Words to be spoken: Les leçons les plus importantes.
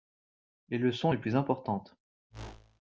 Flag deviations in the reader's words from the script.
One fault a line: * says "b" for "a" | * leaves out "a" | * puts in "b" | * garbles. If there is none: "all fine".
all fine